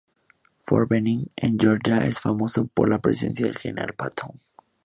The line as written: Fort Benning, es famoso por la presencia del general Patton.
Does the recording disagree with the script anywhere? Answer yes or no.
yes